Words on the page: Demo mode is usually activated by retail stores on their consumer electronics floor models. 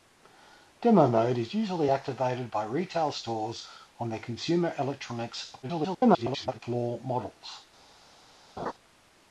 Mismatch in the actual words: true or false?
true